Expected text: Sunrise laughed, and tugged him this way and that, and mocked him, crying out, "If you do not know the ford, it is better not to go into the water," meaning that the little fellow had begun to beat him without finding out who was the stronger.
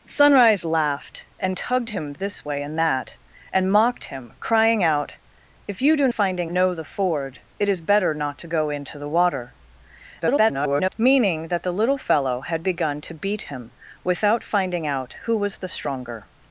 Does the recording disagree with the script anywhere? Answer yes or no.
yes